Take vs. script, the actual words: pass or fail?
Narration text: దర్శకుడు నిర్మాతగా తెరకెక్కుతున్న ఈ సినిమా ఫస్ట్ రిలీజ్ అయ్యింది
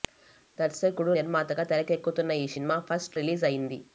pass